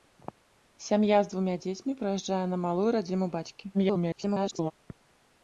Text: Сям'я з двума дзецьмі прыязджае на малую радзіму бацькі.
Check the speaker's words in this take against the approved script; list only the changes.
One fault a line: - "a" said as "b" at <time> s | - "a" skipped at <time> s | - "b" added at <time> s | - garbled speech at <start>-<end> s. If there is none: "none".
- garbled speech at 3.7-4.7 s